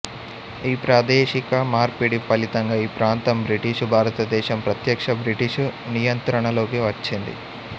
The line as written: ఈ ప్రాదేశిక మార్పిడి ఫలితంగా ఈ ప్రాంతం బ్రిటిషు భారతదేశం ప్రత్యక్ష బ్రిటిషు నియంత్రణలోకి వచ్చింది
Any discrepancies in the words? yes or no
no